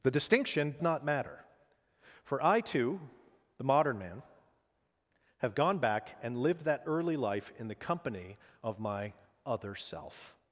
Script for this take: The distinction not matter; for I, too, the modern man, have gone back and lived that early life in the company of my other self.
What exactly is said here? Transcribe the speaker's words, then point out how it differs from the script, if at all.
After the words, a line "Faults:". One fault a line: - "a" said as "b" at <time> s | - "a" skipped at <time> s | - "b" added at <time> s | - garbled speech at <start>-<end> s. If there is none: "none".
The distinction not matter; for I, too, the modern man, have gone back and lived that early life in the company of my other self.
Faults:
none